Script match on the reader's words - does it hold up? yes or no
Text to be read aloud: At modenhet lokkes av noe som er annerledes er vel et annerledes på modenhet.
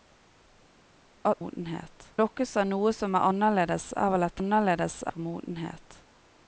yes